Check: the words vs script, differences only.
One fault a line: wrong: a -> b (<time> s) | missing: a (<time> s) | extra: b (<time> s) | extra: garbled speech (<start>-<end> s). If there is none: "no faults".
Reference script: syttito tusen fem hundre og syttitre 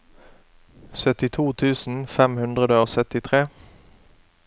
no faults